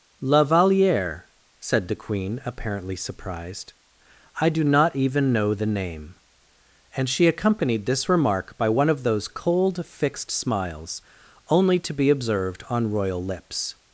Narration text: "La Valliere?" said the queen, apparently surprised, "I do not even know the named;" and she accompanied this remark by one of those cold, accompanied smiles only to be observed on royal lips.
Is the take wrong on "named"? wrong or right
wrong